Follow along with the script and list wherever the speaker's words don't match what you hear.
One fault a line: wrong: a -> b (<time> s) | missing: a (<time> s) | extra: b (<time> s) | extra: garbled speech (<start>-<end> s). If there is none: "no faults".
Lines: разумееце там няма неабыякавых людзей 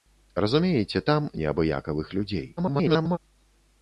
missing: няма (1.3 s)
extra: garbled speech (2.6-3.2 s)